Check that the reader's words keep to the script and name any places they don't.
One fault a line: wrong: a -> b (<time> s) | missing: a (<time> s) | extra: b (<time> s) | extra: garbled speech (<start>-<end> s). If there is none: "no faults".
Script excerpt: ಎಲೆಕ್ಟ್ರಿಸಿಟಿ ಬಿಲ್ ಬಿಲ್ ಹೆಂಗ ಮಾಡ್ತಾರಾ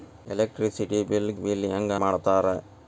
no faults